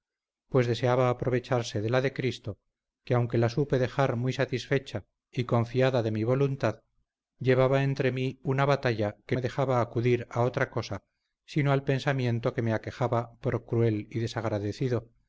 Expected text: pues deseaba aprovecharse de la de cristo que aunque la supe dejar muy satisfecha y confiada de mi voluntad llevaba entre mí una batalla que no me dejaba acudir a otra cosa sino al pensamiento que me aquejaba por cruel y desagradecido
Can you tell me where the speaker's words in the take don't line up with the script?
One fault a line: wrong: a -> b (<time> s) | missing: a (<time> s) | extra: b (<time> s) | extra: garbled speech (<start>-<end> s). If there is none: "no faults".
missing: no (9.4 s)